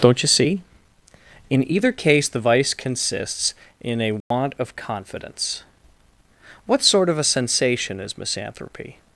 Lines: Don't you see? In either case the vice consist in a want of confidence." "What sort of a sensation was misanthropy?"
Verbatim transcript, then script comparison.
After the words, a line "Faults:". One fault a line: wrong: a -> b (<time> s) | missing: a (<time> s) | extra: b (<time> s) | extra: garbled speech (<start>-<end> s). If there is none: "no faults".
Don't you see? In either case the vice consists in a want of confidence." "What sort of a sensation is misanthropy?"
Faults:
wrong: consist -> consists (2.7 s)
wrong: was -> is (8.0 s)